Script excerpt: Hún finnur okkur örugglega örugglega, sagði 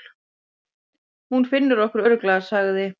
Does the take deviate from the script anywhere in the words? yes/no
yes